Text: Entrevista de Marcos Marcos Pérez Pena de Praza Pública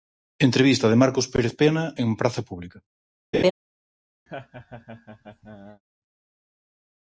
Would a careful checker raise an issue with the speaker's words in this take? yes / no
yes